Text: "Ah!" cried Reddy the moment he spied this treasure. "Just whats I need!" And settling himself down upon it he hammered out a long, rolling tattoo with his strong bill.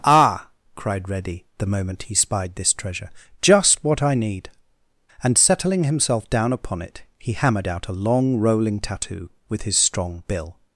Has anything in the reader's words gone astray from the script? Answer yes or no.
yes